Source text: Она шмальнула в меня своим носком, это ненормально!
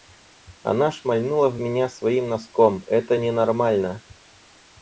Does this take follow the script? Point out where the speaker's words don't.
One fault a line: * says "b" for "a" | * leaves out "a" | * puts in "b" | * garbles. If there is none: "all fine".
all fine